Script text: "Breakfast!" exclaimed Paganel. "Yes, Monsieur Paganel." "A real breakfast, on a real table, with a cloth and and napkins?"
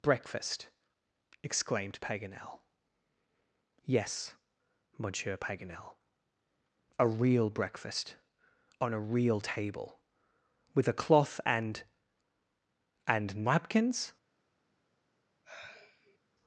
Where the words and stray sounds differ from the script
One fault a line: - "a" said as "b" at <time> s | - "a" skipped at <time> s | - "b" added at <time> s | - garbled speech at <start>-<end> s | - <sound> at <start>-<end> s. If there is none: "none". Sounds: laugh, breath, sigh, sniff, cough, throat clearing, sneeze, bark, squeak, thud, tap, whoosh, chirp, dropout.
- sigh at 15.4-16.2 s